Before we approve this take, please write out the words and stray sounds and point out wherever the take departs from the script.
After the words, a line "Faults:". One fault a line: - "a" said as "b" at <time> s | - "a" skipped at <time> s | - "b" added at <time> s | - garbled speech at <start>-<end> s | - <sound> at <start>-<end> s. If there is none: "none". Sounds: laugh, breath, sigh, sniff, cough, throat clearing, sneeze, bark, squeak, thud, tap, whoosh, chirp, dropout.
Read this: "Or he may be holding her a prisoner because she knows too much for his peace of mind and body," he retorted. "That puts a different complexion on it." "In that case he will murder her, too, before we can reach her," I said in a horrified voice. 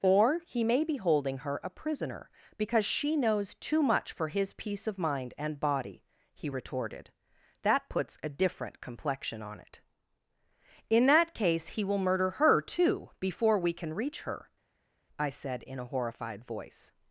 "Or he may be holding her a prisoner because she knows too much for his peace of mind and body," he retorted. "That puts a different complexion on it." "In that case he will murder her, too, before we can reach her," I said in a horrified voice.
Faults:
none